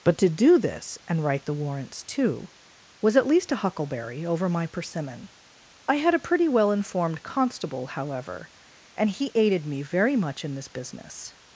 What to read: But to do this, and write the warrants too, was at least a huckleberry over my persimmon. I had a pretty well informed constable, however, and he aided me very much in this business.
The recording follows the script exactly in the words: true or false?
true